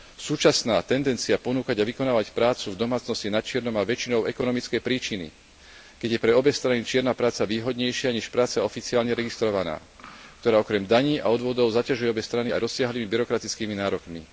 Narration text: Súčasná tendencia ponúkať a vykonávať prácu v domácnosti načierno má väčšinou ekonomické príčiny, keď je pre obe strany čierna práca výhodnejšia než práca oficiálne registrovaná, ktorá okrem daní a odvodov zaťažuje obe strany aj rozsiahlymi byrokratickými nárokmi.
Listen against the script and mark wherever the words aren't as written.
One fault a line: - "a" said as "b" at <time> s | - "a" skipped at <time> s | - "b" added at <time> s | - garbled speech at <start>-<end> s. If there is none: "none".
none